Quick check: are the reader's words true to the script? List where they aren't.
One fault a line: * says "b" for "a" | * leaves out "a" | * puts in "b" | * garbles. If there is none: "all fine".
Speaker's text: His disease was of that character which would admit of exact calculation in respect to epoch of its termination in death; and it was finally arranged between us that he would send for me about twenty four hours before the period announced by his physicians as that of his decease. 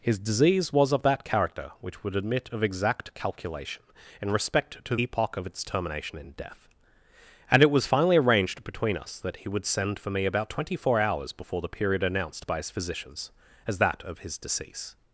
all fine